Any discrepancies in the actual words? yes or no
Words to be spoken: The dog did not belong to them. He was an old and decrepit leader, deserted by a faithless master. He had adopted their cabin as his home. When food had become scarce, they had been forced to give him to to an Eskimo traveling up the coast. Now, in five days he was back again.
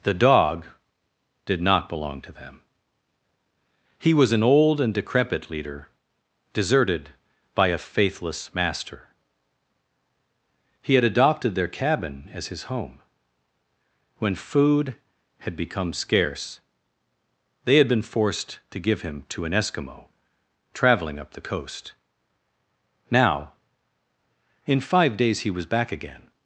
yes